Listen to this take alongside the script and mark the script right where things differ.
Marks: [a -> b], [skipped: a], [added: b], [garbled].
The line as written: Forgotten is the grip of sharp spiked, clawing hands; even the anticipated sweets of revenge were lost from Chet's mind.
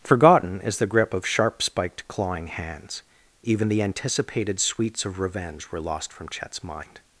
Forgotten is the grip of sharp spiked, clawing hands; even the anticipated sweets of revenge were lost from Chet's mind.